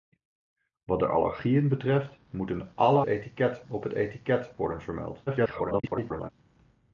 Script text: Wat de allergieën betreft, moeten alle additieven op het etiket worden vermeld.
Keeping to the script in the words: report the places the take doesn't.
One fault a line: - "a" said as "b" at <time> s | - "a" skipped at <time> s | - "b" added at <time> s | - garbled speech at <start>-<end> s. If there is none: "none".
- "additieven" said as "etiket" at 3.0 s
- garbled speech at 5.3-6.3 s